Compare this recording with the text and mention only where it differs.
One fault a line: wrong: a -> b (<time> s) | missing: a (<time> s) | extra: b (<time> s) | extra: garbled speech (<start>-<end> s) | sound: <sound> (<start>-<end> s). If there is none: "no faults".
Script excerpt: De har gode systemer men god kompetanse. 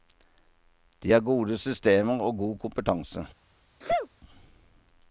wrong: men -> og (2.2 s)
sound: sneeze (3.8-4.1 s)